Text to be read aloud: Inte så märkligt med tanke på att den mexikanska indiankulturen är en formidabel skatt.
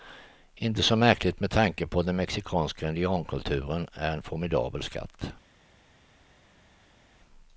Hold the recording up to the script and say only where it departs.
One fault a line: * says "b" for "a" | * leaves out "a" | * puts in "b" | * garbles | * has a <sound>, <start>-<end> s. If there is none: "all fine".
all fine